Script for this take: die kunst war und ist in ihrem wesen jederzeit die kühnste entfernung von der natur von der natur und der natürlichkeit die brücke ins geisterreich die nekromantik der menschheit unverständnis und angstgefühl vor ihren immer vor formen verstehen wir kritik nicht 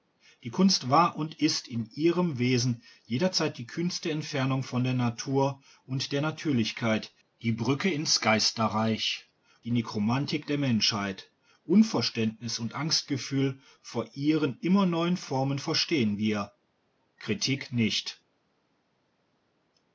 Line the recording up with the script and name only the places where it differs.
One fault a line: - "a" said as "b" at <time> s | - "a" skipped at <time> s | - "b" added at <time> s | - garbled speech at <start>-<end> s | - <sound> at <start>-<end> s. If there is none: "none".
- "von der natur" skipped at 5.6 s
- "vor" said as "neuen" at 14.9 s